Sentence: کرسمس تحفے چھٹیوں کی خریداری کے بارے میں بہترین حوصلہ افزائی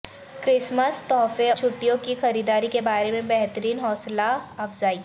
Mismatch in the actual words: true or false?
false